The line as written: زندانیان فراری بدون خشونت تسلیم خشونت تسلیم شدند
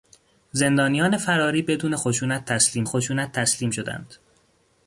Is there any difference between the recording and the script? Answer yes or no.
no